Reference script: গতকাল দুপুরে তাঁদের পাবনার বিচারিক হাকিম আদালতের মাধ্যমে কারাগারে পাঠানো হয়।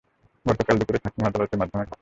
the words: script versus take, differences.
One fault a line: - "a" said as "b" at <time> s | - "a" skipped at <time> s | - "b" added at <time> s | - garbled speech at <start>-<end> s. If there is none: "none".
- "তাঁদের পাবনার বিচারিক" skipped at 1.0 s
- "কারাগারে পাঠানো" skipped at 1.9 s